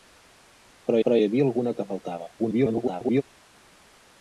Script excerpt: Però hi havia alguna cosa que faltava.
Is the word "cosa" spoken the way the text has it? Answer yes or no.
no